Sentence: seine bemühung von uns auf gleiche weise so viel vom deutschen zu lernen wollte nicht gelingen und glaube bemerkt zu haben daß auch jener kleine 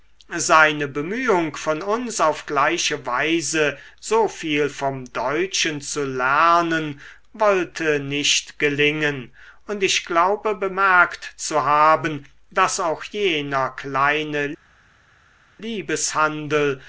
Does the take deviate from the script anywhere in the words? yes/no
yes